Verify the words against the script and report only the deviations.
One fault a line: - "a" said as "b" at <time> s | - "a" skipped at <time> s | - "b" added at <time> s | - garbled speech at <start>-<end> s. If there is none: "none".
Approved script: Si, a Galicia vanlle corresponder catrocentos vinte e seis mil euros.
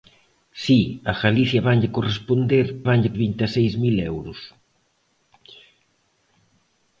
- "catrocentos" said as "vanlle" at 2.9 s